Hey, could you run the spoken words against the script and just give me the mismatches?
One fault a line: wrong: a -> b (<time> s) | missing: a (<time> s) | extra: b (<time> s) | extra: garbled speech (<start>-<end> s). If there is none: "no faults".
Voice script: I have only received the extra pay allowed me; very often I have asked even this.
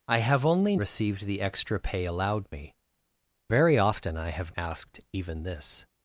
no faults